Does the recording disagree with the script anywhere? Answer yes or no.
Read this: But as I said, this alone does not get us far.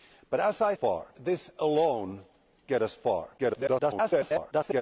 yes